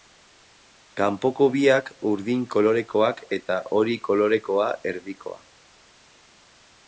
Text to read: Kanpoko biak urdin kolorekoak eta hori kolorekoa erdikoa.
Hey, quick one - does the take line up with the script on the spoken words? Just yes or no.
yes